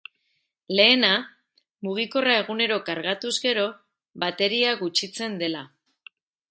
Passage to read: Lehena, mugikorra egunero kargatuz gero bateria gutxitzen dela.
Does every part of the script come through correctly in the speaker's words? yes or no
yes